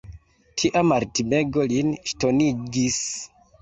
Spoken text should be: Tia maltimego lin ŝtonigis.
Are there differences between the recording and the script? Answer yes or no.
no